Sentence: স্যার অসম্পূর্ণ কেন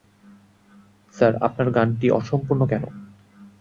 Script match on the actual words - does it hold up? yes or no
no